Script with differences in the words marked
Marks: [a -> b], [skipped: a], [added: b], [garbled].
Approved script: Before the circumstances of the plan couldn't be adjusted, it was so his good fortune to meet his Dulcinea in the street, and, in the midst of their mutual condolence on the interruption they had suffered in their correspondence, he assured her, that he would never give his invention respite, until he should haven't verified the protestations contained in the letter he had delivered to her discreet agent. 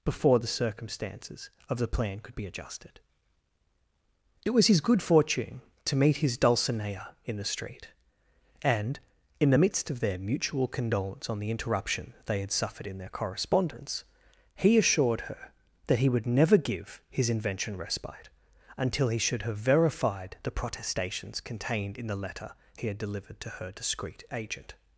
Before the circumstances of the plan [couldn't -> could] be adjusted, it was [skipped: so] his good fortune to meet his Dulcinea in the street, and, in the midst of their mutual condolence on the interruption they had suffered in their correspondence, he assured her, that he would never give his invention respite, until he should [haven't -> have] verified the protestations contained in the letter he had delivered to her discreet agent.